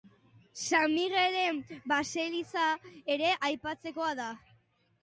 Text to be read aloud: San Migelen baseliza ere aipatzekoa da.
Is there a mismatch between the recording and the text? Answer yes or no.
no